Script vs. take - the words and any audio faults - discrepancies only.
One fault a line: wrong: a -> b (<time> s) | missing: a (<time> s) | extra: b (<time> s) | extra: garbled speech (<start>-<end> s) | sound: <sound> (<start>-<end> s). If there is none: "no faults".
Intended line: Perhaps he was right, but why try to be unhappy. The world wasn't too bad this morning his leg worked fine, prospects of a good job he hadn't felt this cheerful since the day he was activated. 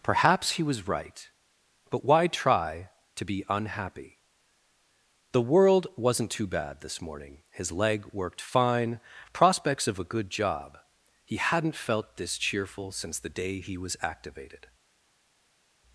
no faults